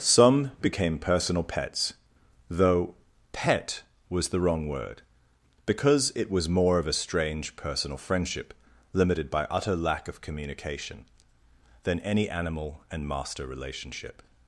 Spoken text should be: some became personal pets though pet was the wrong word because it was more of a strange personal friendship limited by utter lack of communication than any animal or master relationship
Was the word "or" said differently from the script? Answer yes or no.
yes